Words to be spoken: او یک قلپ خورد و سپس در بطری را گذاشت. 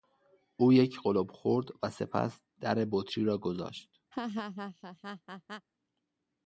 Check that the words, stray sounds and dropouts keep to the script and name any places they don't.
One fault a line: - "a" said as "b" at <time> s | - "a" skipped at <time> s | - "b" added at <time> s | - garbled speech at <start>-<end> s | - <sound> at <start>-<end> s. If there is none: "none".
- laugh at 4.1-5.7 s